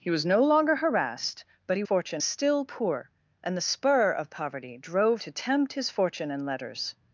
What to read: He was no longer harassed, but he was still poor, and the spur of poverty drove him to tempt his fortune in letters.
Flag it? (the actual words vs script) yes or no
yes